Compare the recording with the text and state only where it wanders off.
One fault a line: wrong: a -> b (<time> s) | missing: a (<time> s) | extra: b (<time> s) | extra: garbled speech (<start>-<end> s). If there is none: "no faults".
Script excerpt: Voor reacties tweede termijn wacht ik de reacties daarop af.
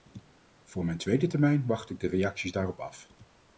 wrong: reacties -> mijn (0.8 s)